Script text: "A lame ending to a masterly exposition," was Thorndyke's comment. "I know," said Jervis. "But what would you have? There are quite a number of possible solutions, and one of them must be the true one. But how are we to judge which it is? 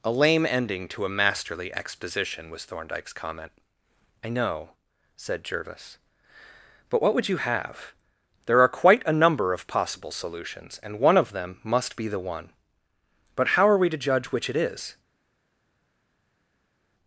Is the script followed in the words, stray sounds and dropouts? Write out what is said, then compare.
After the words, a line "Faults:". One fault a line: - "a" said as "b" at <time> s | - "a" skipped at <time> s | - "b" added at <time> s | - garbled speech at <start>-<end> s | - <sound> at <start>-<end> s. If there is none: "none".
"A lame ending to a masterly exposition," was Thorndyke's comment. "I know," said Jervis. "But what would you have? There are quite a number of possible solutions, and one of them must be the one. But how are we to judge which it is?
Faults:
- "true" skipped at 12.2 s